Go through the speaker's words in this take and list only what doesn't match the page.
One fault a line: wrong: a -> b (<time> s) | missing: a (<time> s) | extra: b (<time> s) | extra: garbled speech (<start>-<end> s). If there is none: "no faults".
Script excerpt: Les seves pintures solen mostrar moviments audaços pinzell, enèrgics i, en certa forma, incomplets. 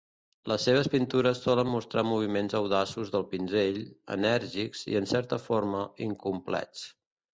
extra: del (3.2 s)